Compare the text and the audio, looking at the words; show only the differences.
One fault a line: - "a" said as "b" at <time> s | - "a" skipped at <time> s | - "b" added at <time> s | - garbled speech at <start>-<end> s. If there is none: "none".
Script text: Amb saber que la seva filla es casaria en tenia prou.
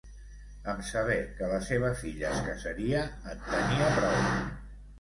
none